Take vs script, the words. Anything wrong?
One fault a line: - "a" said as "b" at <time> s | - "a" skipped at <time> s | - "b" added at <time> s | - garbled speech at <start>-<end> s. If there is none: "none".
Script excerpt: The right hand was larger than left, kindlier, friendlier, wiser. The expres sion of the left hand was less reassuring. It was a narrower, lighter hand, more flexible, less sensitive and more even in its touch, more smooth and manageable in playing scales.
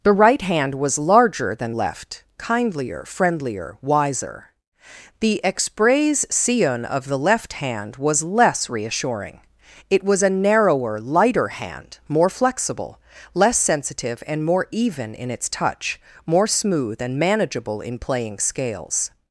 none